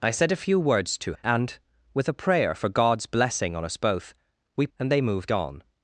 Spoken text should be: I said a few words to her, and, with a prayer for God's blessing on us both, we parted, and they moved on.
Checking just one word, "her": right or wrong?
wrong